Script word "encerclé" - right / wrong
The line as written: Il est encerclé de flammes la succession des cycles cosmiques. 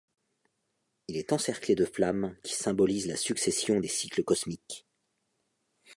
right